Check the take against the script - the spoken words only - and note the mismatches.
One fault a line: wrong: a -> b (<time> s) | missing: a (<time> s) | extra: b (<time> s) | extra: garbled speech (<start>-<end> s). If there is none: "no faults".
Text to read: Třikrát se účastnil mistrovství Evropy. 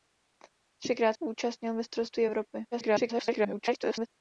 missing: se (1.1 s)
extra: garbled speech (2.7-4.1 s)